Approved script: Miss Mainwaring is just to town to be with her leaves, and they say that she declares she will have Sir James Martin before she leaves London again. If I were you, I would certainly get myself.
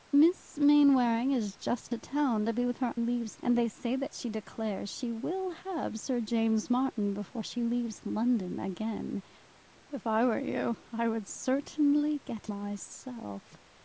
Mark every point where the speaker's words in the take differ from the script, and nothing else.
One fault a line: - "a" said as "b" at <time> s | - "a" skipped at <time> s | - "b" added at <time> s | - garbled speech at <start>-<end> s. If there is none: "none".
none